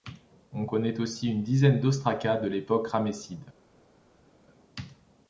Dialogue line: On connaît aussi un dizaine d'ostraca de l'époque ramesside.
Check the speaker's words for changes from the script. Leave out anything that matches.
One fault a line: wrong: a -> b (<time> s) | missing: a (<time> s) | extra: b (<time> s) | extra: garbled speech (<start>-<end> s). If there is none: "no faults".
wrong: un -> une (1.3 s)